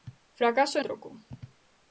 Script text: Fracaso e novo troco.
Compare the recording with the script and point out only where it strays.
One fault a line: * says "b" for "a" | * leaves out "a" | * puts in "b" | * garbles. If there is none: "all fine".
* leaves out "novo"